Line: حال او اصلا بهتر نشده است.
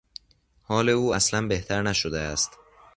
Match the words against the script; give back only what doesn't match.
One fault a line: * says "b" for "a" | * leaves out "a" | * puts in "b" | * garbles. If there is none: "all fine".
all fine